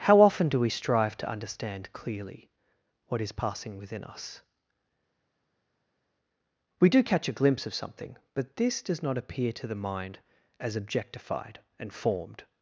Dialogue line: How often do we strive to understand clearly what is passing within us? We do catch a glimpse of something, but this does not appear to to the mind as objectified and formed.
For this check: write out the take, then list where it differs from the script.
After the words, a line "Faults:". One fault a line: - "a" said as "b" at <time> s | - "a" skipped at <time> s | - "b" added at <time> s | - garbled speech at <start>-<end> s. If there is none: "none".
How often do we strive to understand clearly what is passing within us? We do catch a glimpse of something, but this does not appear to the mind as objectified and formed.
Faults:
- "to" skipped at 9.7 s